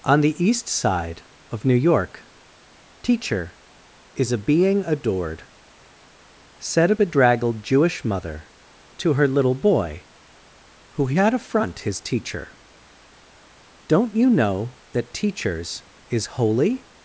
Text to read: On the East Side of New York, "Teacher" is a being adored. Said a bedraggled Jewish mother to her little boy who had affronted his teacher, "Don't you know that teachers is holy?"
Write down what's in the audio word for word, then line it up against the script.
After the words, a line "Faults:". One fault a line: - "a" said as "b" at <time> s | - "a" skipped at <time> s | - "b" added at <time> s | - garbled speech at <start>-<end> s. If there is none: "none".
On the East Side of New York, "Teacher" is a being adored. Said a bedraggled Jewish mother to her little boy who had affront his teacher, "Don't you know that teachers is holy?"
Faults:
- "affronted" said as "affront" at 11.3 s